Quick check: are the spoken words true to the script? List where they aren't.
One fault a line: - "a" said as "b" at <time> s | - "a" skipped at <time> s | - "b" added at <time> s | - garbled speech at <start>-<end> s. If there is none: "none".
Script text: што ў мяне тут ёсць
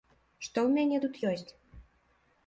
none